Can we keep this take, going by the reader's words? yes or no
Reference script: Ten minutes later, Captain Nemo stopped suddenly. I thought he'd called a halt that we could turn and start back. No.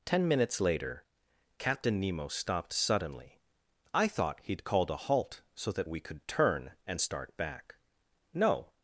no